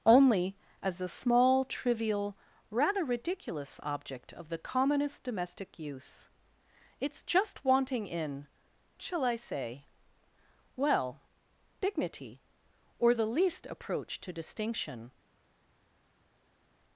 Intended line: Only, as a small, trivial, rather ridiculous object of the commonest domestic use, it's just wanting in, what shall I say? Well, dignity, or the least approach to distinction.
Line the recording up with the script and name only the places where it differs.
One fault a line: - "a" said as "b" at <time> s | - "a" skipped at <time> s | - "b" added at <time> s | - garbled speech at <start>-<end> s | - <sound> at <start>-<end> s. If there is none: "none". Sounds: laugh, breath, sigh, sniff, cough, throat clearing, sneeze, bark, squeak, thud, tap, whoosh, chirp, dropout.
- "what" skipped at 8.5 s